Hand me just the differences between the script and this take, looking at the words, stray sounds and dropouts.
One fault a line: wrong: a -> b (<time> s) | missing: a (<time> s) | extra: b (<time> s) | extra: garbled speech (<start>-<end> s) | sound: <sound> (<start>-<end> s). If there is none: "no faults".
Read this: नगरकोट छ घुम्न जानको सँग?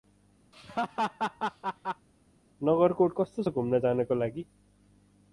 sound: laugh (0.5-2.1 s)
extra: कस्तो (3.2 s)
wrong: सँग -> लागि (4.2 s)